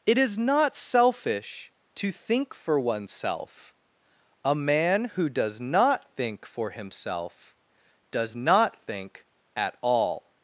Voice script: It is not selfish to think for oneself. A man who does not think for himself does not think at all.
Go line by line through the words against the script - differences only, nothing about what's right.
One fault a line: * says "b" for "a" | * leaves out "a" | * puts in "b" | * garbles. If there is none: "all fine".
all fine